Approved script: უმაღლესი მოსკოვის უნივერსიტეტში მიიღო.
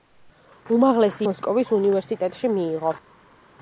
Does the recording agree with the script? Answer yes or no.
yes